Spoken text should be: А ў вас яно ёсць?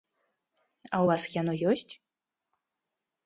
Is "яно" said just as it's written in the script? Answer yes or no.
yes